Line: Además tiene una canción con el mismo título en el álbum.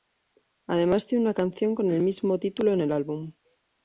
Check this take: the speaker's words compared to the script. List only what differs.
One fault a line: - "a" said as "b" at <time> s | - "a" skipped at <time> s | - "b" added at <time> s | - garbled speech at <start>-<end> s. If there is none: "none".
none